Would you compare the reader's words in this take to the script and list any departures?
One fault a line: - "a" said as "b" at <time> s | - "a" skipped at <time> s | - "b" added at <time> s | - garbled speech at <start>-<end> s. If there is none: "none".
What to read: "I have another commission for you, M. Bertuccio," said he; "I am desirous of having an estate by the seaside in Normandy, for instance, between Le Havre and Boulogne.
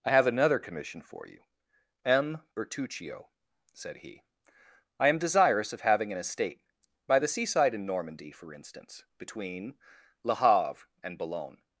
none